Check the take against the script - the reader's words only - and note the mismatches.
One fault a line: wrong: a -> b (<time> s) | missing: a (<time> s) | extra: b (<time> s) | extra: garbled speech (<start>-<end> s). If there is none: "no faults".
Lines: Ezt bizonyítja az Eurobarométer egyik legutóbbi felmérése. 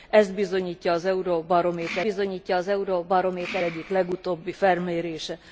extra: bizonyítja az Eurobarométer (2.0 s)